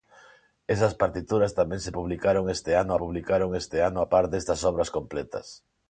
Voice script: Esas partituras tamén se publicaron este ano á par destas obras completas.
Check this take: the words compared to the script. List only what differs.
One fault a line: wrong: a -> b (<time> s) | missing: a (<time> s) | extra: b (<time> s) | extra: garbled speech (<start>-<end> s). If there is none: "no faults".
extra: publicaron este ano (3.0 s)